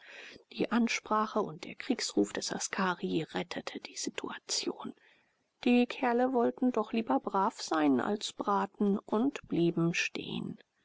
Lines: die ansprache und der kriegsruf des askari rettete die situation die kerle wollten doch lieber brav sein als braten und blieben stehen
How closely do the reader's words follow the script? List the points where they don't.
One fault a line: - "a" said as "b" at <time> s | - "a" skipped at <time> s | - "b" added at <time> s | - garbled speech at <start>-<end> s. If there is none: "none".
none